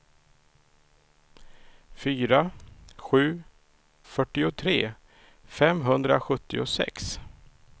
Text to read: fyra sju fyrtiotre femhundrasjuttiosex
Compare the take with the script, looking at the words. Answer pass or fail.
pass